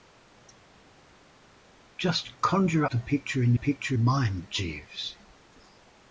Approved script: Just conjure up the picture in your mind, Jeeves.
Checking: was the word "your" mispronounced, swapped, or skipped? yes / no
yes